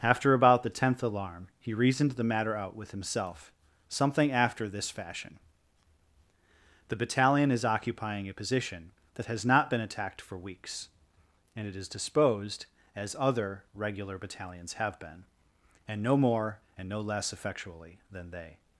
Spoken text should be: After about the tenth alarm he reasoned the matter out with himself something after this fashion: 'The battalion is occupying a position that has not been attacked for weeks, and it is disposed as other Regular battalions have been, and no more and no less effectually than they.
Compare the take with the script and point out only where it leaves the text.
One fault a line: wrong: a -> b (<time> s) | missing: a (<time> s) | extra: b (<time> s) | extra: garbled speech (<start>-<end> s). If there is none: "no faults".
no faults